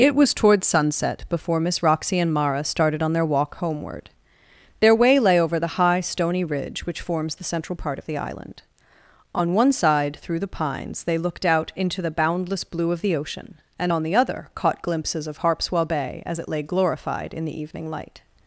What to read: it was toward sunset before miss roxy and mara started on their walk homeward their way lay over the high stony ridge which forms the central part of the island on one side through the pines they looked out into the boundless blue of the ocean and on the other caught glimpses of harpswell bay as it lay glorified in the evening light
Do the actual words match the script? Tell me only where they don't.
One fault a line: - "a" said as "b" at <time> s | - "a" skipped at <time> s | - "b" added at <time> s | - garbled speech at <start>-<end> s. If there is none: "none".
none